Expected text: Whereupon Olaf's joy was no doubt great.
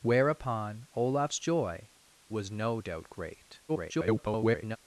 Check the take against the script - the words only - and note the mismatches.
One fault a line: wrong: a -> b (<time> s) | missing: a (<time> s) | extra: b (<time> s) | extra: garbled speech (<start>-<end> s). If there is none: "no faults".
extra: garbled speech (3.7-4.8 s)